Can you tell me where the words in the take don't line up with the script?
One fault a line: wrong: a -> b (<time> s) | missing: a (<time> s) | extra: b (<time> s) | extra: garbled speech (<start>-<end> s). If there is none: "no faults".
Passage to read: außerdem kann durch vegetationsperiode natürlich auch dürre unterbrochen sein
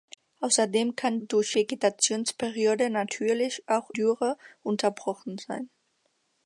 no faults